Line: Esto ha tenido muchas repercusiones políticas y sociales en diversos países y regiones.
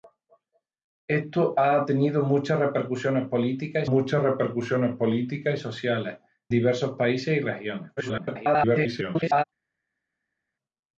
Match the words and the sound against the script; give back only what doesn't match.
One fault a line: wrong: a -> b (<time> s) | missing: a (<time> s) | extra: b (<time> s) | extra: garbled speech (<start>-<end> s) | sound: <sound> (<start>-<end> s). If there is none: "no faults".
extra: muchas repercusiones políticas (3.8 s)
missing: en (6.2 s)
extra: garbled speech (8.0-9.4 s)